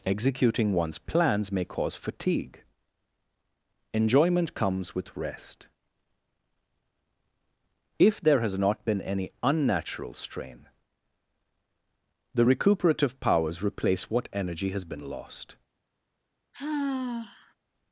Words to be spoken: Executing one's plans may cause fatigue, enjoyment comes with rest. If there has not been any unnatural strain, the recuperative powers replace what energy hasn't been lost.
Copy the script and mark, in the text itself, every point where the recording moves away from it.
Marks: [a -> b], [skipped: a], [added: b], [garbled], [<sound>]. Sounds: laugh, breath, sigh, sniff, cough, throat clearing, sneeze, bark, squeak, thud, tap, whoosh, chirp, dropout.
Executing one's plans may cause fatigue, enjoyment comes with rest. If there has not been any unnatural strain, the recuperative powers replace what energy [hasn't -> has] been lost. [sigh]